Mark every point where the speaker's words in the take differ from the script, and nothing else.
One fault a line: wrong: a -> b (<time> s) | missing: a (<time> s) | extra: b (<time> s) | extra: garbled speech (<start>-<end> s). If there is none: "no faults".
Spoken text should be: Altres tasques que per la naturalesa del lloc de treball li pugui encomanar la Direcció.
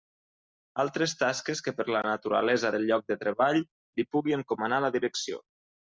no faults